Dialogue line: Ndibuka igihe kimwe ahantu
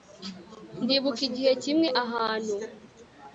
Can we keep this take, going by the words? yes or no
yes